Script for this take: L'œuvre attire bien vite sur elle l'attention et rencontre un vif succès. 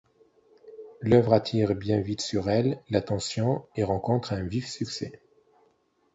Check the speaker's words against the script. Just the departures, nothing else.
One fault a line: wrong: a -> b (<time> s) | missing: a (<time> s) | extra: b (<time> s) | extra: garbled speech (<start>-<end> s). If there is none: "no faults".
no faults